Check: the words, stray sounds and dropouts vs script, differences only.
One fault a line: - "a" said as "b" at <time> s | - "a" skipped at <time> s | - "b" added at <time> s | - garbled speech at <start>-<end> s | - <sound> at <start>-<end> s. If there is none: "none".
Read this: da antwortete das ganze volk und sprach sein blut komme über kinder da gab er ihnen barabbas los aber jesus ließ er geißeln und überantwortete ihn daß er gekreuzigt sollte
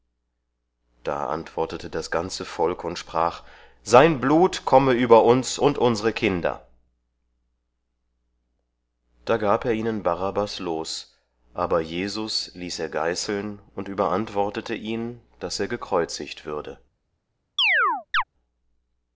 - "uns und unsere" added at 5.3 s
- "sollte" said as "würde" at 16.4 s
- chirp at 17.6-18.2 s